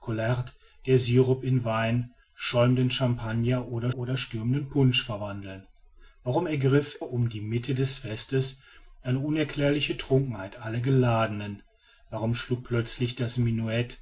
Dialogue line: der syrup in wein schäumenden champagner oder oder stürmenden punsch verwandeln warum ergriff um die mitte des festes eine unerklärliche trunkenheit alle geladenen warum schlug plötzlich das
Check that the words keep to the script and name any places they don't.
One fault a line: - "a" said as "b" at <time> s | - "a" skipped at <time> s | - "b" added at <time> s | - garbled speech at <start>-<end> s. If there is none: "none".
none